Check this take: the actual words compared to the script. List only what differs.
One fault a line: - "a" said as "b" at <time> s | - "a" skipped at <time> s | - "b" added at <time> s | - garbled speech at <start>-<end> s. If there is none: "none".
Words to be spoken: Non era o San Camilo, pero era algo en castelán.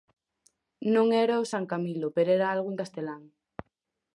none